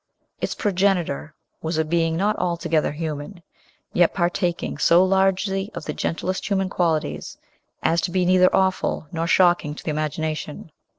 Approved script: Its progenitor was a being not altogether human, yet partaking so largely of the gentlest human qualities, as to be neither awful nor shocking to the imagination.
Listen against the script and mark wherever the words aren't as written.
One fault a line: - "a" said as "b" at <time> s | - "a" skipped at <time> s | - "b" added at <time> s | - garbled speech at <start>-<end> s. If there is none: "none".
none